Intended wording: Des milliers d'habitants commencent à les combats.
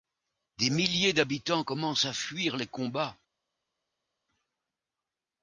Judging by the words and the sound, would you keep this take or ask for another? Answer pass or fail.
fail